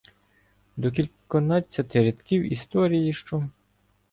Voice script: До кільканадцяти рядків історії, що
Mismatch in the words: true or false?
false